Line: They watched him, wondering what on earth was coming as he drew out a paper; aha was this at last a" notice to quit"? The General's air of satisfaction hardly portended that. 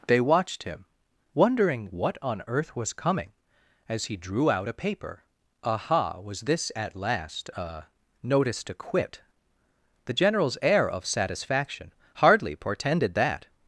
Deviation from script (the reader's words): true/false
false